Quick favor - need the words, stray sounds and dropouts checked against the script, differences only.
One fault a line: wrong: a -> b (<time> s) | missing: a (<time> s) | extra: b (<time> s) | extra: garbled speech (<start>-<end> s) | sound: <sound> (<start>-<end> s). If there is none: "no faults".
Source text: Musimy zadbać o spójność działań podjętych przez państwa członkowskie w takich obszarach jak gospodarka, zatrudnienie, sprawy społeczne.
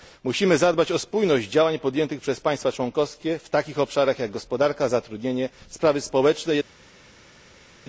no faults